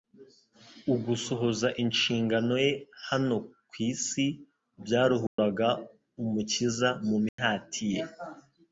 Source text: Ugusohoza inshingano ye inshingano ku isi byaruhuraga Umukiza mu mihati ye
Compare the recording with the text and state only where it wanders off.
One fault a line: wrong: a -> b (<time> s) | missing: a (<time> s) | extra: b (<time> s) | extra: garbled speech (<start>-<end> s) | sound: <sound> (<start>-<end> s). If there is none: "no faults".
wrong: inshingano -> hano (3.1 s)
sound: dropout (5.3-5.4 s)
sound: dropout (7.3-7.4 s)